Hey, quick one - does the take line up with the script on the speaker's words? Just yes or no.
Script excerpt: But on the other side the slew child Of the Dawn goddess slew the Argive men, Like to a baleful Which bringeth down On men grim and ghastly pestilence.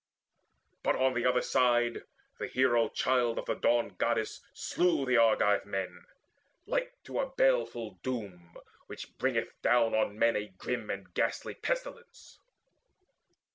no